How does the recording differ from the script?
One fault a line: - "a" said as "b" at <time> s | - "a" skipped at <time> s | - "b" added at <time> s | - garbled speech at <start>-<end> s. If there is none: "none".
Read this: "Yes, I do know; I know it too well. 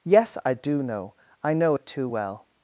none